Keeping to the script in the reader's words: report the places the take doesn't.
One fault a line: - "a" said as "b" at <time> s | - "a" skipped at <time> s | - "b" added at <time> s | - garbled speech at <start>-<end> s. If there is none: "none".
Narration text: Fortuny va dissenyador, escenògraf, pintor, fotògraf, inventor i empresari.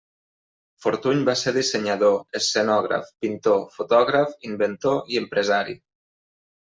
- "ser" added at 1.4 s